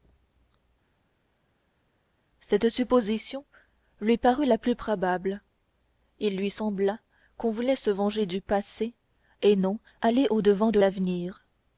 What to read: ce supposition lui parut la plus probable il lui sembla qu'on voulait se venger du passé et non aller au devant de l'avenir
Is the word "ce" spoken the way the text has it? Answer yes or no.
no